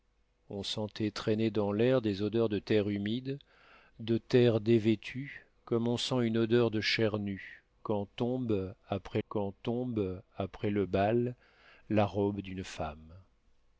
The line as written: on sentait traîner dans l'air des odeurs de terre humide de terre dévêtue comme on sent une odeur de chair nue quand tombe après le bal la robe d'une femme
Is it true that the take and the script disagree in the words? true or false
true